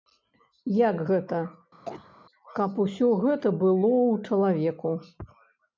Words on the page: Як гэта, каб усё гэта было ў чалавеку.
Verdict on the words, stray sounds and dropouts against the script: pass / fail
fail